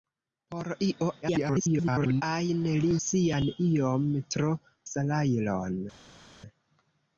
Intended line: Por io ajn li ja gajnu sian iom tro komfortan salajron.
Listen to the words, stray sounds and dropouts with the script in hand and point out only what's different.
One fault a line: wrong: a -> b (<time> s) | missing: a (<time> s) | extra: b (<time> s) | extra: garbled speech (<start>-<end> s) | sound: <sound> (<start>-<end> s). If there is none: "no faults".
extra: garbled speech (1.2-2.2 s)
missing: ja gajnu (2.9 s)
missing: komfortan (4.5 s)